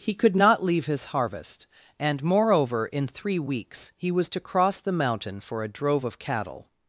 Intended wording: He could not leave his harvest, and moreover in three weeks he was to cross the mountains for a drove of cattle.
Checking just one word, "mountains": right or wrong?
wrong